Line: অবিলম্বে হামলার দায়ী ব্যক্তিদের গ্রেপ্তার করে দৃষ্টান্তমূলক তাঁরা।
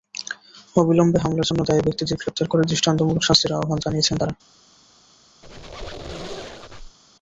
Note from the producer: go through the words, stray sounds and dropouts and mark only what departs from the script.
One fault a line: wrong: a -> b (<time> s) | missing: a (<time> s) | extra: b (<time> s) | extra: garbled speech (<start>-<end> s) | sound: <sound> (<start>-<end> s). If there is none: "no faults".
extra: জন্য (1.5 s)
extra: শাস্তির আহ্বান জানিয়েছেন (3.2 s)
sound: squeak (5.4-7.0 s)